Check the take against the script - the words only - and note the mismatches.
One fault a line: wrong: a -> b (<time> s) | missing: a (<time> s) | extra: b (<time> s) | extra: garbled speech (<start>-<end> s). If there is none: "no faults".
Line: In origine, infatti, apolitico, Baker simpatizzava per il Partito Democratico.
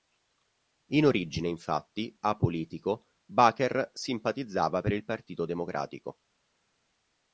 no faults